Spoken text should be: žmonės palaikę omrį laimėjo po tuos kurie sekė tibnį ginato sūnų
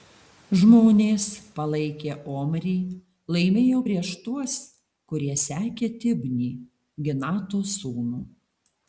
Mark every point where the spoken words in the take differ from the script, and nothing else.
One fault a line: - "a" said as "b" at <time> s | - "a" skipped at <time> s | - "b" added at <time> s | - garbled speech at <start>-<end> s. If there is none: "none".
- "po" said as "prieš" at 3.9 s